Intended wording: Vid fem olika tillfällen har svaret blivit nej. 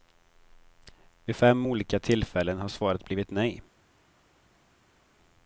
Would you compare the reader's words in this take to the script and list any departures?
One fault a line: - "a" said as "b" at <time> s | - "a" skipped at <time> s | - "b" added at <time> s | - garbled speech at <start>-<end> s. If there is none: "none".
none